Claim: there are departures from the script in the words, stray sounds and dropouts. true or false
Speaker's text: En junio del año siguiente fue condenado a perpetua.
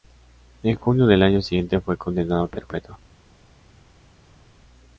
false